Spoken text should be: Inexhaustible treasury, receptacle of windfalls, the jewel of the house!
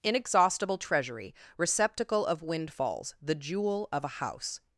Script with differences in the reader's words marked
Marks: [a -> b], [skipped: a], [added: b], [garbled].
Inexhaustible treasury, receptacle of windfalls, the jewel of [the -> a] house!